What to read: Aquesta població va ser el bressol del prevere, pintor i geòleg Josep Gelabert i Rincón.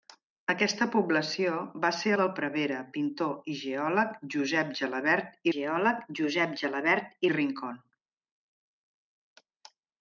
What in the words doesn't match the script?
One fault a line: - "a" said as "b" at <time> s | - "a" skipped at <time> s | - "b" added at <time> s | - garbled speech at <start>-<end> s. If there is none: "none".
- "el bressol" skipped at 2.1 s
- "geòleg Josep Gelabert" added at 5.5 s